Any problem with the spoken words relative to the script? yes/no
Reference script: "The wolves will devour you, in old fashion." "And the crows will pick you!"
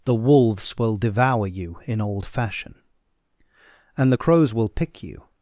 no